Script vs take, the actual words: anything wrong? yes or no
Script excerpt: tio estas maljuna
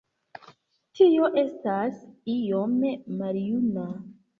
yes